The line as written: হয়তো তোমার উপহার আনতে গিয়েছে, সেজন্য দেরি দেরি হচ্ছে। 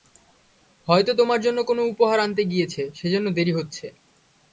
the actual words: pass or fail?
fail